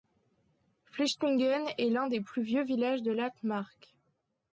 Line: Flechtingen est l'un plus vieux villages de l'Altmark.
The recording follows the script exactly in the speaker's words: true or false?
false